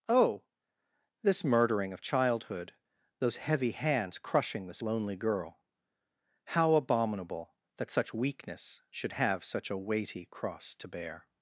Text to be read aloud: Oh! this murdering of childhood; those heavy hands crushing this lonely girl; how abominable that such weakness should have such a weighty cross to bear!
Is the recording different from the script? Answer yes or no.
no